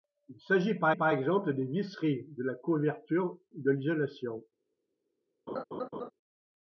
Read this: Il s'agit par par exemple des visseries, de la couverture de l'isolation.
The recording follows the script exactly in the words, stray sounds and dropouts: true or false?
false